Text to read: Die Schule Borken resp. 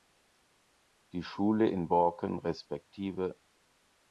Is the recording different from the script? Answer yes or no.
yes